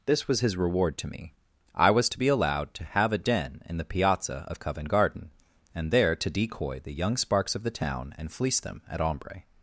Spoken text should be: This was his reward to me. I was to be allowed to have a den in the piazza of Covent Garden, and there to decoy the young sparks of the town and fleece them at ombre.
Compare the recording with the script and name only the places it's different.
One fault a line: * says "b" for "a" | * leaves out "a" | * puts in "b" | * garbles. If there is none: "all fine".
all fine